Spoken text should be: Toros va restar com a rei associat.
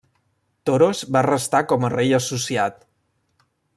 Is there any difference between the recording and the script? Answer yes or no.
no